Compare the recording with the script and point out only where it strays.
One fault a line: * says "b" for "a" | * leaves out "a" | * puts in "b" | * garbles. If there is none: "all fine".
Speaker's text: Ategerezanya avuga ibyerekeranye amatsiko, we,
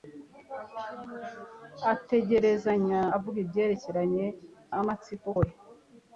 all fine